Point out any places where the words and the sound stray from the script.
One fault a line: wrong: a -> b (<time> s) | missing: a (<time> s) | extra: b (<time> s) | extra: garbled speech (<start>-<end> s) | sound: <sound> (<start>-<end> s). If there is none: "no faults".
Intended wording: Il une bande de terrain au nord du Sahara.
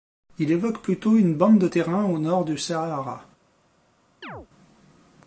extra: évoque plutôt (0.5 s)
sound: chirp (4.2-4.5 s)